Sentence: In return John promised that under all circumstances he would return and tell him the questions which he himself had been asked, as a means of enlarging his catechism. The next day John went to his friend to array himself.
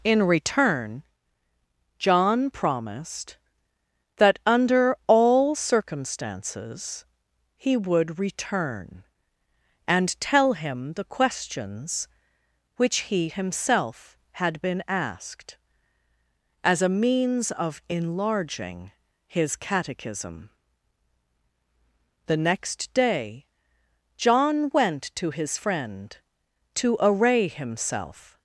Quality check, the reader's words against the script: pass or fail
pass